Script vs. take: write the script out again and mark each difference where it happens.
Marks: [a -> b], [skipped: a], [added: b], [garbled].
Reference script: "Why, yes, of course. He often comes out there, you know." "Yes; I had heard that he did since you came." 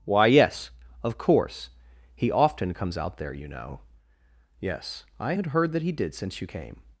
"Why, yes, of course. He often comes out there, you know." "Yes; I had heard that he did since you came."